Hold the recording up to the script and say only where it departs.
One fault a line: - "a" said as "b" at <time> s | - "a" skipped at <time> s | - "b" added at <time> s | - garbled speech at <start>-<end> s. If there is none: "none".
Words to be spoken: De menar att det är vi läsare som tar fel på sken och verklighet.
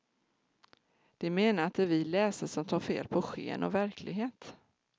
none